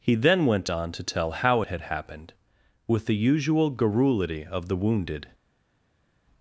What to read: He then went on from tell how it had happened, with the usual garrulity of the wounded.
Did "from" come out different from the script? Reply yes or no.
yes